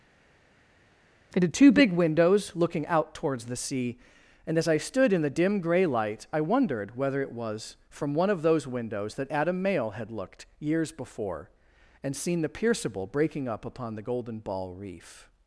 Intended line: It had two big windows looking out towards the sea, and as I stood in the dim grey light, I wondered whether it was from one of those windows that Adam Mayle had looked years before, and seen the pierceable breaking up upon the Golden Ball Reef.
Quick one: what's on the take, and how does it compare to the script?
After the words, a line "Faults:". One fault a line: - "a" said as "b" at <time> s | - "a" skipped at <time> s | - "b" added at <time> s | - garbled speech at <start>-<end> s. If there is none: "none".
It had two big windows looking out towards the sea, and as I stood in the dim grey light, I wondered whether it was from one of those windows that Adam Mayle had looked years before, and seen the pierceable breaking up upon the Golden Ball Reef.
Faults:
none